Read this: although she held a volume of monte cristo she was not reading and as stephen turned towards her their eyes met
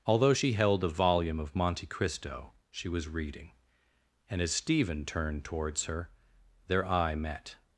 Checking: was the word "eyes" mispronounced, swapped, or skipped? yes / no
yes